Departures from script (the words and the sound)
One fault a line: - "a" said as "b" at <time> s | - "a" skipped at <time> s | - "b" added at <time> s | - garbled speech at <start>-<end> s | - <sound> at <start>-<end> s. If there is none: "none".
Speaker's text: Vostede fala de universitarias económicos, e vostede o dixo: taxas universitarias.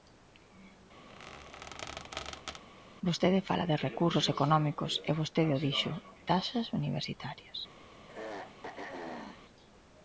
- squeak at 1.1-2.6 s
- "universitarias" said as "recursos" at 3.9 s
- throat clearing at 8.1-9.4 s